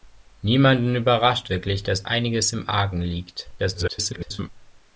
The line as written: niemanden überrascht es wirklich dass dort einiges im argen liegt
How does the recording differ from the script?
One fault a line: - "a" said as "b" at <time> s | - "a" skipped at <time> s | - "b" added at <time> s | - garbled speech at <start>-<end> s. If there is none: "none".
- "es" skipped at 1.5 s
- "dort" skipped at 2.1 s
- garbled speech at 3.6-4.5 s